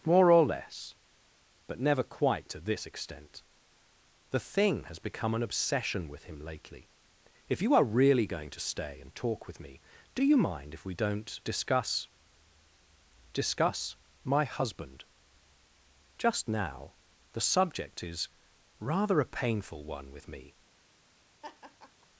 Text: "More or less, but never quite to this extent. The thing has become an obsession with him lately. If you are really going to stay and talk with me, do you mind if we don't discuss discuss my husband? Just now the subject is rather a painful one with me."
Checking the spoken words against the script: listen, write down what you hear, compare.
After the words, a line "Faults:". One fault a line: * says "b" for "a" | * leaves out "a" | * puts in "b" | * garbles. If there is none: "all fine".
"More or less, but never quite to this extent. The thing has become an obsession with him lately. If you are really going to stay and talk with me, do you mind if we don't discuss discuss my husband? Just now the subject is rather a painful one with me."
Faults:
all fine